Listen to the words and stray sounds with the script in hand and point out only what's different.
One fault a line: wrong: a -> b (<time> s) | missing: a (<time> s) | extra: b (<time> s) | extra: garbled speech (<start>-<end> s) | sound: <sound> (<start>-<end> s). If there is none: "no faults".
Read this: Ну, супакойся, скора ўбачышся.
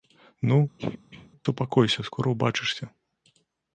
sound: throat clearing (0.8-1.3 s)